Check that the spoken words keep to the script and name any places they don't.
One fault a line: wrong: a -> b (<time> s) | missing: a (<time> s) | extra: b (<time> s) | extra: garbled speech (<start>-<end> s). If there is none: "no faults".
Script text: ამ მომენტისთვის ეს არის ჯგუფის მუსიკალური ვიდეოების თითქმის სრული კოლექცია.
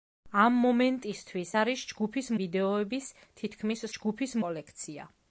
missing: ეს (1.5 s)
missing: მუსიკალური (2.3 s)
wrong: სრული -> ჯგუფის (4.0 s)